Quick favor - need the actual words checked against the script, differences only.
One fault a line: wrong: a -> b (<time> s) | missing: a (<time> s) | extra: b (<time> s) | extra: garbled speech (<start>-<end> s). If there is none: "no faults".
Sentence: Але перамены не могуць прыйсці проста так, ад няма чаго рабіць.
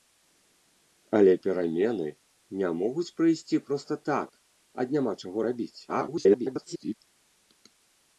extra: garbled speech (5.9-6.9 s)